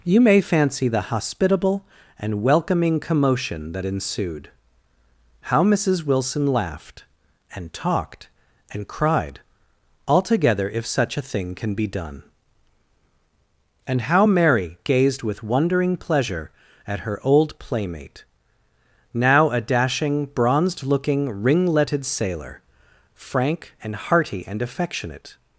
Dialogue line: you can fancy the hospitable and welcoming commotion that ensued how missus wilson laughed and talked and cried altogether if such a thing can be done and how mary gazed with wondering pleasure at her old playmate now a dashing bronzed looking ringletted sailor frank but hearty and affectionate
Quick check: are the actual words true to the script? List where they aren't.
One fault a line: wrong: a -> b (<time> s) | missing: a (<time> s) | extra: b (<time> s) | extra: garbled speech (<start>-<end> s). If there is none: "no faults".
wrong: can -> may (0.2 s)
wrong: but -> and (23.8 s)